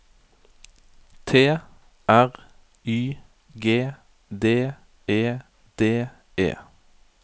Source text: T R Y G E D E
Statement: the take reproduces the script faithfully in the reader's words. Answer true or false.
false